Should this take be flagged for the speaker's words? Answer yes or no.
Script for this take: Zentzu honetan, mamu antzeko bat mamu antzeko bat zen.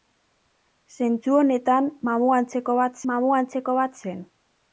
no